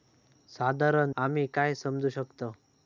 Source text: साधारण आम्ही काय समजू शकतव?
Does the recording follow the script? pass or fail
pass